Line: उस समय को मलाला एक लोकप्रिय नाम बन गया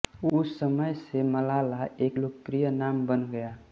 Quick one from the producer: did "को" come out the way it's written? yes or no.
no